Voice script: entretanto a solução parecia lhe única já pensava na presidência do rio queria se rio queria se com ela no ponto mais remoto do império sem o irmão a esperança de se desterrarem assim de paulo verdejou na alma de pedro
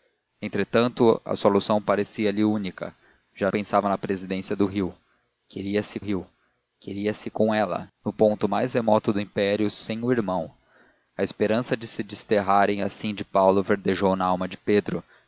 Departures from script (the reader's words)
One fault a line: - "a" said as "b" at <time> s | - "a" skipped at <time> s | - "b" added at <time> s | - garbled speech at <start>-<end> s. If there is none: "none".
none